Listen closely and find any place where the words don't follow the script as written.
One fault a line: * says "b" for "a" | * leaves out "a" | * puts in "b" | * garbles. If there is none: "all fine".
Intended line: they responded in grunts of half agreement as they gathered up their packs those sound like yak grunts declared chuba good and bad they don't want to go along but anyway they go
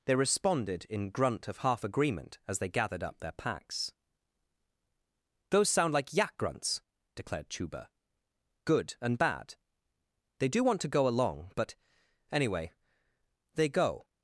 * says "grunt" for "grunts"
* says "do" for "don't"